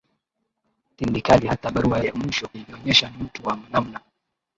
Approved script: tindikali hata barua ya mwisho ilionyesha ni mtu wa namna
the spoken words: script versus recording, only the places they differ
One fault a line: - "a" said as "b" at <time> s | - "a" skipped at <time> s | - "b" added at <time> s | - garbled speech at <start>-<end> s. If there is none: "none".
none